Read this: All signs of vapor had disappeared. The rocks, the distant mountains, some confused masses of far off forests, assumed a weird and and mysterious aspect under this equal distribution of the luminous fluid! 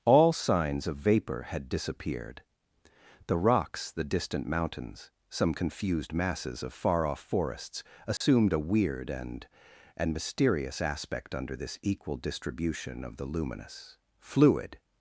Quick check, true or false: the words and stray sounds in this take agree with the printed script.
false